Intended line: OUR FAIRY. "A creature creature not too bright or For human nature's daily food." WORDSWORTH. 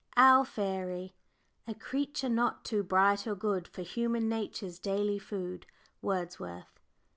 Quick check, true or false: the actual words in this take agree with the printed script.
false